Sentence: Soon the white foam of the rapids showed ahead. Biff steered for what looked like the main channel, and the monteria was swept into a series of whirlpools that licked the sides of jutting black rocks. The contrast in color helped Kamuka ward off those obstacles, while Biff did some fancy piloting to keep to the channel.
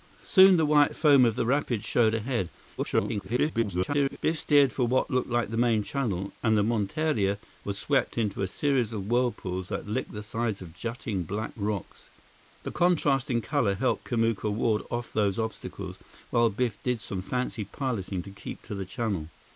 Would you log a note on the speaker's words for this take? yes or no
yes